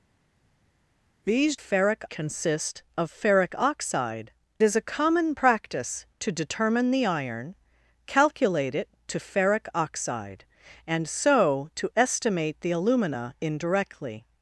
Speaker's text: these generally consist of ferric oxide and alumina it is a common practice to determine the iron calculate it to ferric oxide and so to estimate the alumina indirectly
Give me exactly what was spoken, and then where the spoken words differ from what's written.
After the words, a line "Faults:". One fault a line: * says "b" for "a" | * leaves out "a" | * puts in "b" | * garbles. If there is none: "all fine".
these ferric consist of ferric oxide is a common practice to determine the iron calculate it to ferric oxide and so to estimate the alumina indirectly
Faults:
* says "ferric" for "generally"
* leaves out "and alumina it"